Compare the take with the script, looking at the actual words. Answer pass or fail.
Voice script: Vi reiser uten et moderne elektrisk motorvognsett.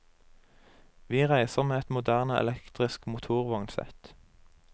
fail